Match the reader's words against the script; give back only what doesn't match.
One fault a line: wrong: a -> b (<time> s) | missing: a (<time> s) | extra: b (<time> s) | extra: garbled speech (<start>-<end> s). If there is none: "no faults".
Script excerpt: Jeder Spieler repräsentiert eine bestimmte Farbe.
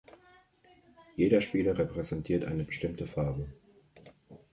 no faults